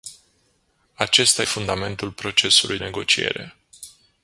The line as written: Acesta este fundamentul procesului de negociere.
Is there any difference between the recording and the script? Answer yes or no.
yes